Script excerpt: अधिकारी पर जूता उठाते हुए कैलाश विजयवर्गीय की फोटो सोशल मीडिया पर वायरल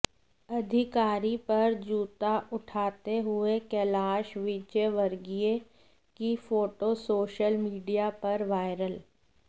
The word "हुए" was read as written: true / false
true